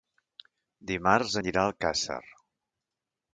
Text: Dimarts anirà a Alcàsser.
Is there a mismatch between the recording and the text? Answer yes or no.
no